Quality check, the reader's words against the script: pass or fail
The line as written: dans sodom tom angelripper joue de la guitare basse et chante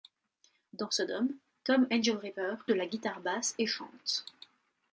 fail